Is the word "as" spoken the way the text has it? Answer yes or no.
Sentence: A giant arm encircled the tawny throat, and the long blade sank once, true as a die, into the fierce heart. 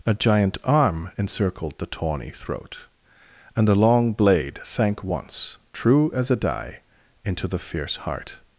yes